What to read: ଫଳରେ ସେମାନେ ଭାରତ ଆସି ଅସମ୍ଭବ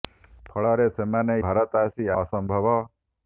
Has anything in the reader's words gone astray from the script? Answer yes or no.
no